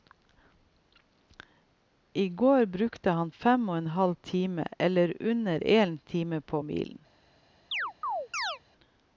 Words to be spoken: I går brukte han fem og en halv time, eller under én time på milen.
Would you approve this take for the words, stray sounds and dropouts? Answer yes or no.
no